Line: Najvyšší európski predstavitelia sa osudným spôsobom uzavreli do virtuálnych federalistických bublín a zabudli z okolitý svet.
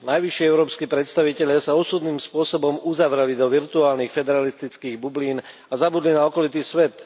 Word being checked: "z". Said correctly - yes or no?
no